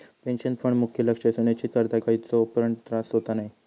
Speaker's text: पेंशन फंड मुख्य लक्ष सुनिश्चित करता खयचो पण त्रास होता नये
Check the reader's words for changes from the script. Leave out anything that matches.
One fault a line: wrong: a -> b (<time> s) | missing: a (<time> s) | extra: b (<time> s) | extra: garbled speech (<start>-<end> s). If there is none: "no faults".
no faults